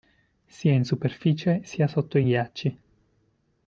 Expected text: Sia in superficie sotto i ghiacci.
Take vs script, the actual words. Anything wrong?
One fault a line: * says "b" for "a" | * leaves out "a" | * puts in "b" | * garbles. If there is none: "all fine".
* puts in "sia"